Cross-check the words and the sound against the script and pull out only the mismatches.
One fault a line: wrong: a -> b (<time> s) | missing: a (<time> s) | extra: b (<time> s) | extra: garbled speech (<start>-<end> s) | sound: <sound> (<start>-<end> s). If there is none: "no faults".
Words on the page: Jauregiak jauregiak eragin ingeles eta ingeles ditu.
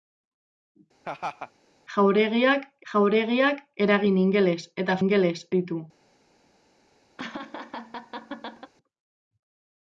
sound: laugh (1.0-1.5 s)
sound: laugh (7.2-8.7 s)